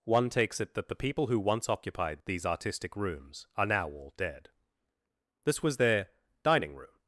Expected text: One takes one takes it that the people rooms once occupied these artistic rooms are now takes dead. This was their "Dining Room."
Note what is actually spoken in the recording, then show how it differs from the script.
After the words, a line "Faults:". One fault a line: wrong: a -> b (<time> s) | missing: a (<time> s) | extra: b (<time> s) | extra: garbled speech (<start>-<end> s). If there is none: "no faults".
One takes it that the people who once occupied these artistic rooms are now all dead. This was their "Dining Room."
Faults:
missing: one takes (0.6 s)
wrong: rooms -> who (1.3 s)
wrong: takes -> all (3.9 s)